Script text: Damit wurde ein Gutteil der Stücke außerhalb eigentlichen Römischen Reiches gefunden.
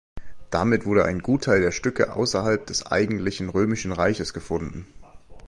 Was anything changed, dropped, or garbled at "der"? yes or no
no